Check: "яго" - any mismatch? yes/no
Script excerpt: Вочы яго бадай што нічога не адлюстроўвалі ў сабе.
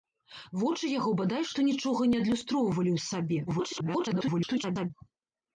no